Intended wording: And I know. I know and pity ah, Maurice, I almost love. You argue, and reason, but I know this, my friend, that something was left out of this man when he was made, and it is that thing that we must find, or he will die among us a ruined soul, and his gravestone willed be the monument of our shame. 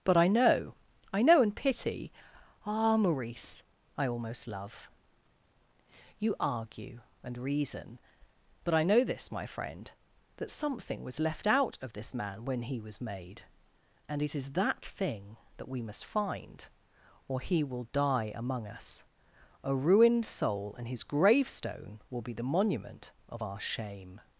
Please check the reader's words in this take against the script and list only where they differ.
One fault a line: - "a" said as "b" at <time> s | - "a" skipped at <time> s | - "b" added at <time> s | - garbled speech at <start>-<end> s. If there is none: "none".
- "And" said as "But" at 0.0 s
- "willed" said as "will" at 22.1 s